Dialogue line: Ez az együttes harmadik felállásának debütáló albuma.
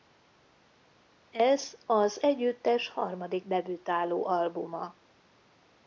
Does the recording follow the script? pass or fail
fail